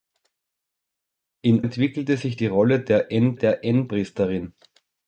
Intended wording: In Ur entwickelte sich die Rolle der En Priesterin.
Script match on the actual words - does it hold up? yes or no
no